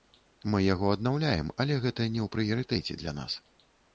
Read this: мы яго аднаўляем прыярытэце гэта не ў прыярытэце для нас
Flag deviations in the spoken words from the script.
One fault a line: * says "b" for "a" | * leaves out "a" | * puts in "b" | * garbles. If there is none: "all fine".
* says "але" for "прыярытэце"